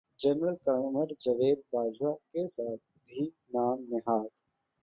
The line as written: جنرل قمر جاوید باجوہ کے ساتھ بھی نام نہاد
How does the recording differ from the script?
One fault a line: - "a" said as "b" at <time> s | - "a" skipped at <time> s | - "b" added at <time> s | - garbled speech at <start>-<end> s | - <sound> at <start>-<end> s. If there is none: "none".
none